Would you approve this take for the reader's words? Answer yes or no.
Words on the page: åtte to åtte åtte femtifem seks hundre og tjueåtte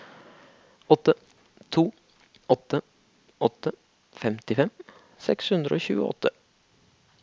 yes